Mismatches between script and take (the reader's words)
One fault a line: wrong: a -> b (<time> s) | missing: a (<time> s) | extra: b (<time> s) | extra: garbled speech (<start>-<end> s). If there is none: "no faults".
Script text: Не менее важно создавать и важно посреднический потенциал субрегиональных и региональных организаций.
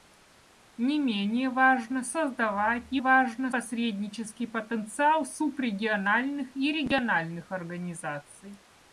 no faults